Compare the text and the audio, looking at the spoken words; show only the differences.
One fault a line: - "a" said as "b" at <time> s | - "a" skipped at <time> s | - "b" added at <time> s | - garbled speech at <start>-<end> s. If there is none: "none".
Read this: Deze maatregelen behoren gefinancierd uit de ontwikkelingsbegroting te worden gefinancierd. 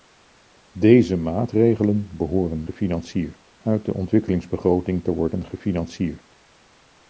none